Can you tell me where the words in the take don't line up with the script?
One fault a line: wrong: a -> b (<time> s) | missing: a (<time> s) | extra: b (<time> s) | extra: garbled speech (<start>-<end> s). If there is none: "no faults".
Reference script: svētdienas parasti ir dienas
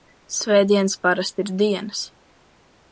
no faults